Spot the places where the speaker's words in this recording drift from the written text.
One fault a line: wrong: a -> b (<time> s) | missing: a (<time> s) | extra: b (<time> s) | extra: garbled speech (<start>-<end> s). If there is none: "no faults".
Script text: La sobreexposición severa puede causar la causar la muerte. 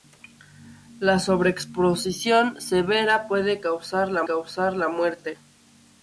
no faults